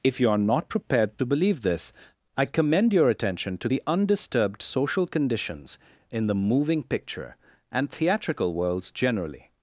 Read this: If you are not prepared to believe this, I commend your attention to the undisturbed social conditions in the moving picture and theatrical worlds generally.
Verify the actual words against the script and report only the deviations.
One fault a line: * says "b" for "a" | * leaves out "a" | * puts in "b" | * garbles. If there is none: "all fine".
all fine